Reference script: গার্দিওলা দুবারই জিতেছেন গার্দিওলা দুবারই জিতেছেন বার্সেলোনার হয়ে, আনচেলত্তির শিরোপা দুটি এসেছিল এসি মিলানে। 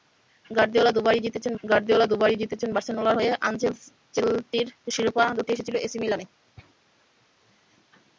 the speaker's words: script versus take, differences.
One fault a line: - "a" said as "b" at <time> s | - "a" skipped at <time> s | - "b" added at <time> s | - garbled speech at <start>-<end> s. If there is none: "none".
none